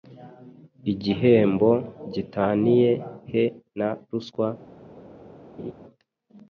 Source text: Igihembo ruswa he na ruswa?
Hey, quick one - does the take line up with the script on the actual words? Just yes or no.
no